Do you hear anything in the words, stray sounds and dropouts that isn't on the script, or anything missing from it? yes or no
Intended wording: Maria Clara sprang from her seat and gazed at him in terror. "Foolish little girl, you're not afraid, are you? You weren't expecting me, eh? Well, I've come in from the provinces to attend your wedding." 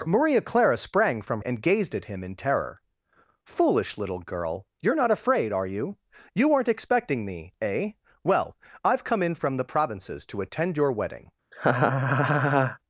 yes